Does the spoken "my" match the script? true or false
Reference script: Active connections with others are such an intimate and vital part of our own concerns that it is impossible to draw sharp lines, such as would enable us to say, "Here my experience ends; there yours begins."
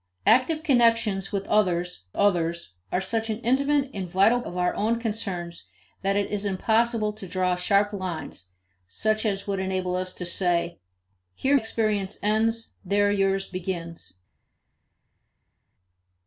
false